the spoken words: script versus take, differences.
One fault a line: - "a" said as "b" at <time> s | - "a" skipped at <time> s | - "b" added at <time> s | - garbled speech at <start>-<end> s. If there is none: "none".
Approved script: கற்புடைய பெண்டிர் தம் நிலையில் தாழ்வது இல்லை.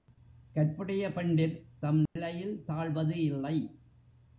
none